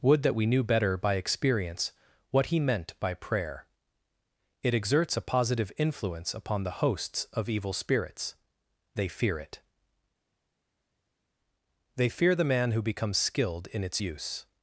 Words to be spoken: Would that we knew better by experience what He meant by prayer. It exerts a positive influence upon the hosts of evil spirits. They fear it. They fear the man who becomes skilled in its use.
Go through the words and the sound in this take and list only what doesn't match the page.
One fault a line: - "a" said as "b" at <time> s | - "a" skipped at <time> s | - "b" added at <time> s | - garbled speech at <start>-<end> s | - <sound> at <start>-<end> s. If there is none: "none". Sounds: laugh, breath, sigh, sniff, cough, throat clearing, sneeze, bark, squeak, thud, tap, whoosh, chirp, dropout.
none